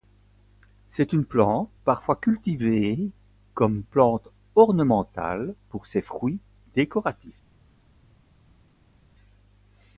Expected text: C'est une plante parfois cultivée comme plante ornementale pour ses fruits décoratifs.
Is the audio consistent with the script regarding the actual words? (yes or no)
yes